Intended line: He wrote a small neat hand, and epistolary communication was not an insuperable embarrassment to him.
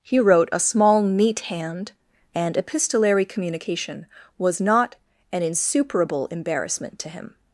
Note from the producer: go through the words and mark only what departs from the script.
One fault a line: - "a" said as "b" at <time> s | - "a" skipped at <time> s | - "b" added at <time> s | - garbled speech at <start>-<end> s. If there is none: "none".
none